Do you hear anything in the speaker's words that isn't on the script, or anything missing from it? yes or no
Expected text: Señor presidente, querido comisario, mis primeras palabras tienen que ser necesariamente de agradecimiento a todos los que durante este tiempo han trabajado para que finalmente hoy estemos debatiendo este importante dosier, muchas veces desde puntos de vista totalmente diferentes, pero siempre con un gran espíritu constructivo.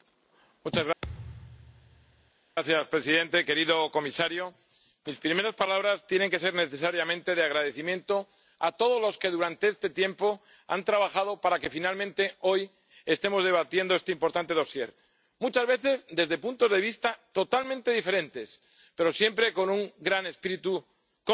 no